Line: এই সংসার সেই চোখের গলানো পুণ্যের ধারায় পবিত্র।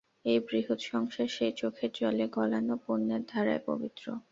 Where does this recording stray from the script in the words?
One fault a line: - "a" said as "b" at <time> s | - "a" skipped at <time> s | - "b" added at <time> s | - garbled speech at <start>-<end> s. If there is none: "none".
- "বৃহৎ" added at 0.4 s
- "জলে" added at 1.9 s